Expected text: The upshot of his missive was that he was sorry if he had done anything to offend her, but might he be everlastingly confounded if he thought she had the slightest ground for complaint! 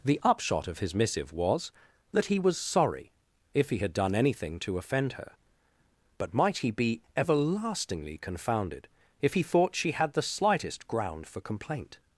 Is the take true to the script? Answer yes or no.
yes